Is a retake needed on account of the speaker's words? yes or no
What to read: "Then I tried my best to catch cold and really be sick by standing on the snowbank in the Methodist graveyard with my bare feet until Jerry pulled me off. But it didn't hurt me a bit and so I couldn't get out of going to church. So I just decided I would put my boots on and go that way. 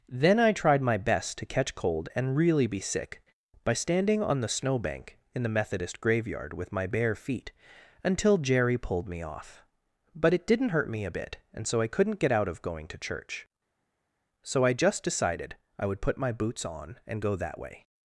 no